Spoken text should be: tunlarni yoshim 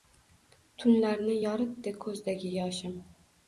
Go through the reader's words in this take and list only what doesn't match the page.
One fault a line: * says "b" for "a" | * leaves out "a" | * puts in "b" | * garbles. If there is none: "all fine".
* puts in "yoritdi ko'zdagi"